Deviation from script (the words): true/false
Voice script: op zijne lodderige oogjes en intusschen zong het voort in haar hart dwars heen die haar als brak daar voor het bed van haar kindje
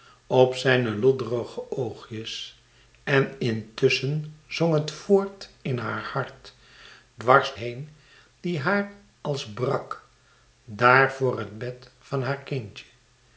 false